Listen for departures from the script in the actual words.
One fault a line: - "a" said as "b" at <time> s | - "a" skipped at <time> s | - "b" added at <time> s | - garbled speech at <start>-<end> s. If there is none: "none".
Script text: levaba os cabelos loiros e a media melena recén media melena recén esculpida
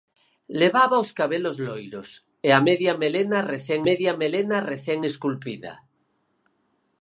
none